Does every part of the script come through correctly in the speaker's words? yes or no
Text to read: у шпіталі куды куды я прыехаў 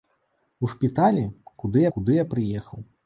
yes